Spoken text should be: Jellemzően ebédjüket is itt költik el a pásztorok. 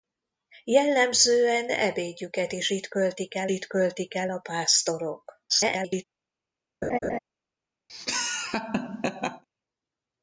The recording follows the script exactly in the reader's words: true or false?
false